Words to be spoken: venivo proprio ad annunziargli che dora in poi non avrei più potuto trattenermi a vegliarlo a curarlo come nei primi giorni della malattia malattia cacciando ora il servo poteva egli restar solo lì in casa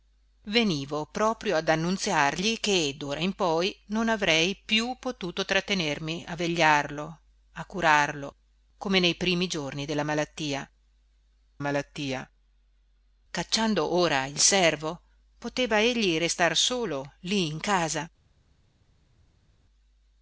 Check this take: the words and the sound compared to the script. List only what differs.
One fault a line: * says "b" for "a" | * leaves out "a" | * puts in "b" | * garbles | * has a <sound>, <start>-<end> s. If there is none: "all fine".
all fine